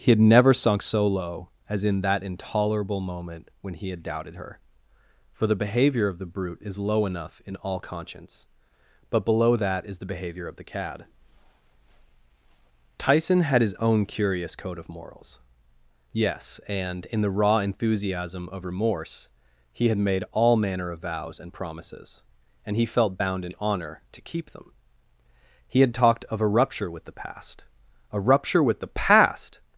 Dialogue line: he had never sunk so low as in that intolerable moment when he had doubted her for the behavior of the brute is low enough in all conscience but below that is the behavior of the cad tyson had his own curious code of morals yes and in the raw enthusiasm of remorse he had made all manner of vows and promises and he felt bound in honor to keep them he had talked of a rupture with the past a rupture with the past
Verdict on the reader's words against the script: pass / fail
pass